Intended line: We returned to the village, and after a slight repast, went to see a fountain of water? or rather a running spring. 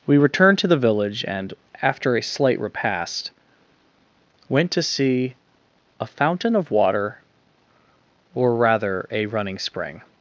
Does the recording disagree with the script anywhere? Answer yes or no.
no